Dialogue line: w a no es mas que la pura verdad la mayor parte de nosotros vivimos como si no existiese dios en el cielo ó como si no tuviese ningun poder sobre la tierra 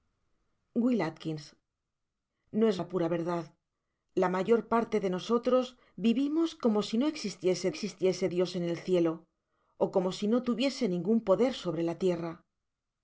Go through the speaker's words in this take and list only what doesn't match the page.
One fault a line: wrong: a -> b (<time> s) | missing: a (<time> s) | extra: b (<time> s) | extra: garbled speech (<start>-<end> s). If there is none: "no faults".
missing: mas que (2.8 s)
extra: existiese (7.7 s)